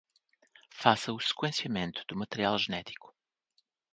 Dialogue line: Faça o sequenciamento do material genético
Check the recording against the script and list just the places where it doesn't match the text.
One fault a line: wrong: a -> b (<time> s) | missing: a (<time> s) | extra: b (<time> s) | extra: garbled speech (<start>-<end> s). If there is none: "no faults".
no faults